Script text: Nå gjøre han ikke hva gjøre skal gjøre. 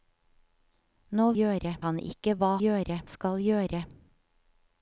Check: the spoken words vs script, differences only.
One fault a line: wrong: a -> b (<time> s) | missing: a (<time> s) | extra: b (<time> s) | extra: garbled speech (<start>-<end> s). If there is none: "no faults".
no faults